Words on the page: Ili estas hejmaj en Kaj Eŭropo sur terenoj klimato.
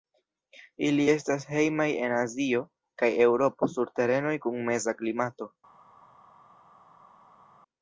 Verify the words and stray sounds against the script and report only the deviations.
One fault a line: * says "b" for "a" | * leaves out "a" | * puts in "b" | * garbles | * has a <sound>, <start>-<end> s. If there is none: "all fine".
* puts in "Azio"
* puts in "kun meza"